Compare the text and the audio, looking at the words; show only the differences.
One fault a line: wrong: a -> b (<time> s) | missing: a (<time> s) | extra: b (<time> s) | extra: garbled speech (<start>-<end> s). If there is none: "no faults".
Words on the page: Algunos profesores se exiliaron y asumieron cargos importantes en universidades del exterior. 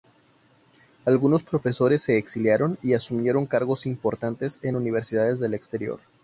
no faults